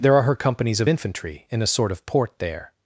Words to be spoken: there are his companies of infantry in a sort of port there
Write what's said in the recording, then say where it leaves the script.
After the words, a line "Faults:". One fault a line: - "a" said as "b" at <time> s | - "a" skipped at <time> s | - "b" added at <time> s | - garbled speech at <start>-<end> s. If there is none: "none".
there are her companies of infantry in a sort of port there
Faults:
- "his" said as "her" at 0.2 s